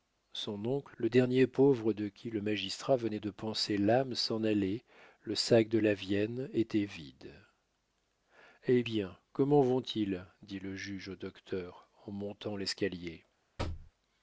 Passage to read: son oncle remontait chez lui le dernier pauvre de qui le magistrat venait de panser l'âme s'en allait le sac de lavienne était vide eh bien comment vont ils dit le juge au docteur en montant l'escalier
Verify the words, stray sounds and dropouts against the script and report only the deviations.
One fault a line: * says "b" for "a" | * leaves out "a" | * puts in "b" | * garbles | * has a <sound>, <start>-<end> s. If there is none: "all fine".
* leaves out "remontait chez lui"
* has a thud, 13.6-13.9 s